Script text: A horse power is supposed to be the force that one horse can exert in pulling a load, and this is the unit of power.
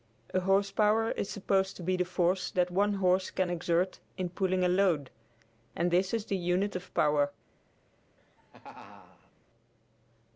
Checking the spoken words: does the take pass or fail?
pass